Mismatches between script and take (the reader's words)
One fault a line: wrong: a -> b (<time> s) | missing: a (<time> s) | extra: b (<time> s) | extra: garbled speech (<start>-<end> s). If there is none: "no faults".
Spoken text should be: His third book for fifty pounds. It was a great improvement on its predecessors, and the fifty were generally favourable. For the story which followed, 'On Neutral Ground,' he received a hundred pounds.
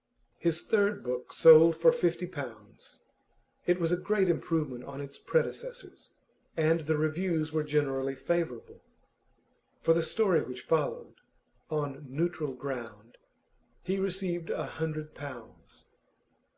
extra: sold (1.3 s)
wrong: fifty -> reviews (7.0 s)